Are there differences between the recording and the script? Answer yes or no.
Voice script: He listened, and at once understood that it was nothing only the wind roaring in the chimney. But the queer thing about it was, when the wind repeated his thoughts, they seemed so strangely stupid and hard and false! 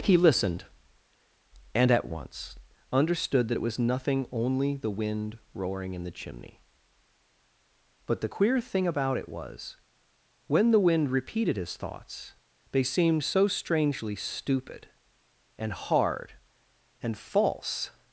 no